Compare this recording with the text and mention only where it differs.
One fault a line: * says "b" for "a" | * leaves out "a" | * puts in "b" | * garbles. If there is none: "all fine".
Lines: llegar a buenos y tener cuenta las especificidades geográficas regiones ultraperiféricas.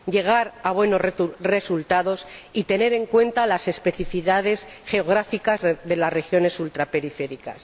* puts in "resultados"
* puts in "en"
* puts in "de las"